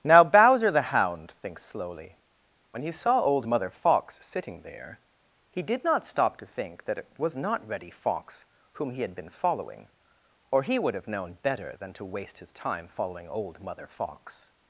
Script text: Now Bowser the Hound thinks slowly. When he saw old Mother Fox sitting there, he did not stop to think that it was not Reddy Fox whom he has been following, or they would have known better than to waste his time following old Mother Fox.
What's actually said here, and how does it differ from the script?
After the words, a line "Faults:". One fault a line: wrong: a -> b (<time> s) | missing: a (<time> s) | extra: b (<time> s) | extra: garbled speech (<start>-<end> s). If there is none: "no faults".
Now Bowser the Hound thinks slowly. When he saw old Mother Fox sitting there, he did not stop to think that it was not Reddy Fox whom he had been following, or he would have known better than to waste his time following old Mother Fox.
Faults:
wrong: has -> had (9.0 s)
wrong: they -> he (10.6 s)